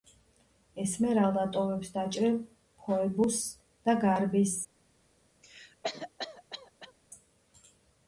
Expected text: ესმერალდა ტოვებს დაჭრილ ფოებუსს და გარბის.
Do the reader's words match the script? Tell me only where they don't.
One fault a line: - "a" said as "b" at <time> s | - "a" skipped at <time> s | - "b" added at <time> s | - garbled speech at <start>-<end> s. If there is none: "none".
none